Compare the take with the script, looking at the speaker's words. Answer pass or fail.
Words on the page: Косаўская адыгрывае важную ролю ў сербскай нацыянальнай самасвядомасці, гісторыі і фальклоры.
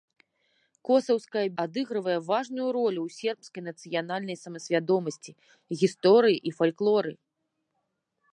pass